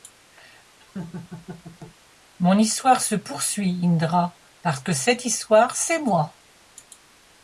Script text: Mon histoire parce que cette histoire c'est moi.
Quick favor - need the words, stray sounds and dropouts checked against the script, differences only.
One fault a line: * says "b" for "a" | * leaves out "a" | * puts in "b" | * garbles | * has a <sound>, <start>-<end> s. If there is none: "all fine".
* has a laugh, 0.8-2.0 s
* puts in "se poursuit Indra"